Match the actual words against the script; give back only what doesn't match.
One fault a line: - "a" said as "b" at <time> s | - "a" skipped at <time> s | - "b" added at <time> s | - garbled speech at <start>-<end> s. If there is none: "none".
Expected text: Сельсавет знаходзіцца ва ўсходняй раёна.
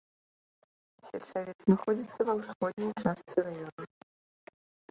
- "частцы" added at 3.1 s